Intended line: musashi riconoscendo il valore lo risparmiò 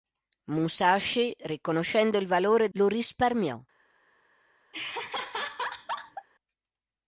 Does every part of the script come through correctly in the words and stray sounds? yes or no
no